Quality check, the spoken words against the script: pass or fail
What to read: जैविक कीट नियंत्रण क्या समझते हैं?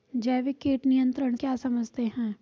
pass